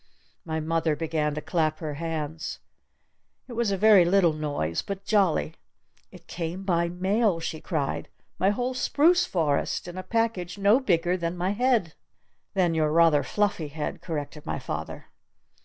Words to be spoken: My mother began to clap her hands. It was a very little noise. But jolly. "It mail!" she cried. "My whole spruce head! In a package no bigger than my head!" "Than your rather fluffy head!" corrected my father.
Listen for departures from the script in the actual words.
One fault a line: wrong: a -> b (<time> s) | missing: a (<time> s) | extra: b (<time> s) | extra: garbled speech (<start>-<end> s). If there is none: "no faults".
extra: came by (6.2 s)
wrong: head -> forest (9.3 s)